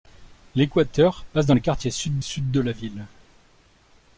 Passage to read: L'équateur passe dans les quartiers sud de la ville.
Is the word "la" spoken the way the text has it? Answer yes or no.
yes